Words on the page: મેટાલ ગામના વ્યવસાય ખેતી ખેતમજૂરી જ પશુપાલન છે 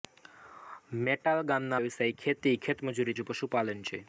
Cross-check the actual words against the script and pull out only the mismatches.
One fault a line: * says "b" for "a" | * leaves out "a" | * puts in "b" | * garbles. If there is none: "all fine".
all fine